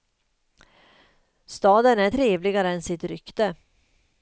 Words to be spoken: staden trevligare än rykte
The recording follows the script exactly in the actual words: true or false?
false